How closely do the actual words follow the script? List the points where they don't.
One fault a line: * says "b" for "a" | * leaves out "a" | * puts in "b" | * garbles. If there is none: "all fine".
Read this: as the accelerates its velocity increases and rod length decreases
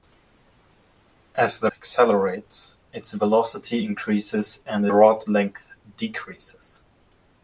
all fine